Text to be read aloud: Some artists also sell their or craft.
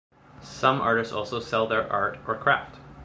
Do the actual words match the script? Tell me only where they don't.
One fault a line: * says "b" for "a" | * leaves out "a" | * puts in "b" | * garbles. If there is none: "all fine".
* puts in "art"